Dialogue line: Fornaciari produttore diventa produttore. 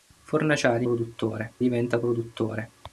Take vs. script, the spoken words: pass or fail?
pass